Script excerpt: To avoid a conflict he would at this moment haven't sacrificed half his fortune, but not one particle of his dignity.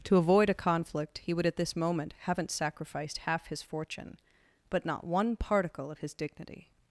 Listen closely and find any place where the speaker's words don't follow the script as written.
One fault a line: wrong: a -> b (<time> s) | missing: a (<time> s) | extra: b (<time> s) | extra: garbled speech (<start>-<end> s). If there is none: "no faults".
no faults